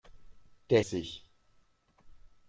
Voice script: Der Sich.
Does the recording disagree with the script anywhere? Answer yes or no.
no